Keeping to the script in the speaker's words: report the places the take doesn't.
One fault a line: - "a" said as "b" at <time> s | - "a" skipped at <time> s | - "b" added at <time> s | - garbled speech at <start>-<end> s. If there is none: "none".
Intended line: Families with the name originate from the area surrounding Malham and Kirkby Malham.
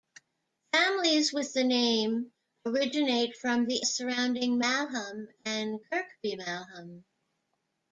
- "area" skipped at 3.9 s